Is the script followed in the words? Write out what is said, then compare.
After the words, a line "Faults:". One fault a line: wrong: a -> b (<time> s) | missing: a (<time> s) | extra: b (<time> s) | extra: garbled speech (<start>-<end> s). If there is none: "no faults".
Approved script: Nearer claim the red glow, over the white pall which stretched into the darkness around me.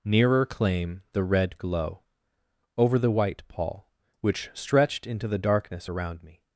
Nearer claim the red glow, over the white pall which stretched into the darkness around me.
Faults:
no faults